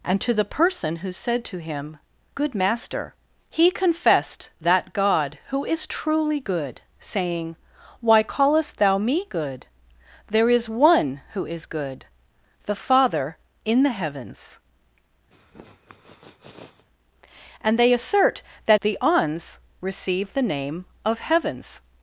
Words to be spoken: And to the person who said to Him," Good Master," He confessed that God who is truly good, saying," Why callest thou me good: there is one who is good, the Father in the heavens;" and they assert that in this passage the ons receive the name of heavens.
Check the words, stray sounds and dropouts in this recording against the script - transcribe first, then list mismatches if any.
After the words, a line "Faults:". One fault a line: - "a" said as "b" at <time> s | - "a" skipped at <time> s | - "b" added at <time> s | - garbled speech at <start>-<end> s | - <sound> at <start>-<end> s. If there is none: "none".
And to the person who said to Him," Good Master," He confessed that God who is truly good, saying," Why callest thou me good: there is one who is good, the Father in the heavens;" and they assert that the ons receive the name of heavens.
Faults:
- sniff at 15.3-16.9 s
- "in this passage" skipped at 18.8 s